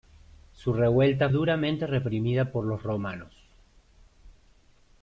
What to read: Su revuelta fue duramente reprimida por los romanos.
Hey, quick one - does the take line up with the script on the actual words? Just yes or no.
no